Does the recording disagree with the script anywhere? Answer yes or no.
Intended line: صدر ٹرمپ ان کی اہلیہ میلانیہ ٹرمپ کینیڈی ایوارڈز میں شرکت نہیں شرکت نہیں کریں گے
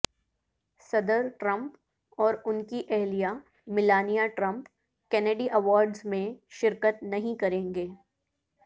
yes